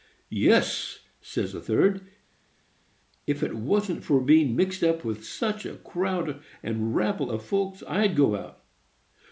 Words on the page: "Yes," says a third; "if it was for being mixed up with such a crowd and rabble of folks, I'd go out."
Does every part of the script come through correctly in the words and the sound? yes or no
no